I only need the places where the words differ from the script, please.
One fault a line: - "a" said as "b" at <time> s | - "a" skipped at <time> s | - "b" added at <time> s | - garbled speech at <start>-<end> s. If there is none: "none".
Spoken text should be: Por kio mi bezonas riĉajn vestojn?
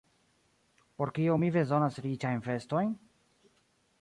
none